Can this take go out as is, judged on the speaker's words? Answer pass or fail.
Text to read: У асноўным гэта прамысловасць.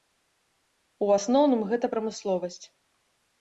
pass